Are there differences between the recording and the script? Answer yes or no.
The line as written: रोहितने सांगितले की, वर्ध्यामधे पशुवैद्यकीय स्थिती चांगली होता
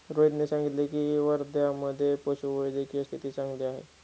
yes